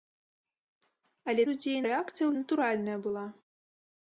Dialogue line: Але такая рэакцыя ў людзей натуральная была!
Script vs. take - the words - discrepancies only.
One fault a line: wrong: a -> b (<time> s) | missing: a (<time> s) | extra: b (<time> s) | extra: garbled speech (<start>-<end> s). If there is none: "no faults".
wrong: такая -> людзей (1.5 s)
missing: людзей (2.3 s)